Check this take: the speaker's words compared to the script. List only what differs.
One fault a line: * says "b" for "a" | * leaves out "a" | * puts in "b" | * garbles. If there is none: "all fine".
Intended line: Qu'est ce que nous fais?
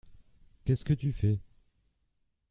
* says "tu" for "nous"